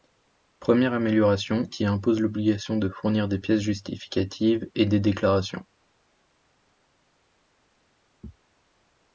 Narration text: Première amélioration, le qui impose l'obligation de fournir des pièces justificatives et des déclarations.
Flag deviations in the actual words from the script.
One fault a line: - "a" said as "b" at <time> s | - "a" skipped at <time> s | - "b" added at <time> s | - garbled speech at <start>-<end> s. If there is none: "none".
- "le" skipped at 1.7 s